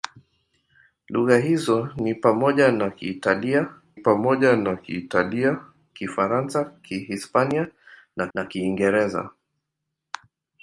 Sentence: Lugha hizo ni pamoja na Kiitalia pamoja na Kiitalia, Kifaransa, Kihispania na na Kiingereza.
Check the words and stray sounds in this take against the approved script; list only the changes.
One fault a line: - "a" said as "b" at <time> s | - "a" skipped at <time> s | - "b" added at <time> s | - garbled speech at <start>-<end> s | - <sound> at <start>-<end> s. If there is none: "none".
none